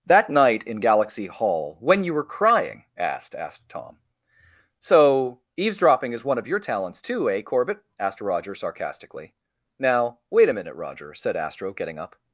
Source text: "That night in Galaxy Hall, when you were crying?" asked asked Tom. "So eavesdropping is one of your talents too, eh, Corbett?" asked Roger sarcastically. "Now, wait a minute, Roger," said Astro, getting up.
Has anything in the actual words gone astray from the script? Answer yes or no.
no